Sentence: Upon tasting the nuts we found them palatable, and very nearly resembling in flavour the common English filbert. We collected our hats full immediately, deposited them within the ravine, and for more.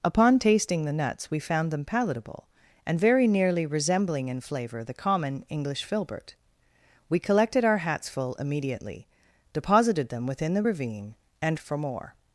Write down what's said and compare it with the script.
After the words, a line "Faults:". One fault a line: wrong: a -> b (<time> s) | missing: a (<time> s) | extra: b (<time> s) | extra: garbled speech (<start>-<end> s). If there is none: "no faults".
Upon tasting the nuts we found them palatable, and very nearly resembling in flavour the common English filbert. We collected our hats full immediately, deposited them within the ravine, and for more.
Faults:
no faults